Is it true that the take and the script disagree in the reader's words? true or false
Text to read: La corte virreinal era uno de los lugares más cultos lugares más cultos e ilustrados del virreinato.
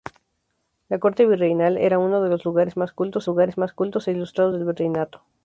false